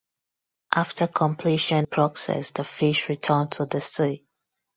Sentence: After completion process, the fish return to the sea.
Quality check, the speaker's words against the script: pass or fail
pass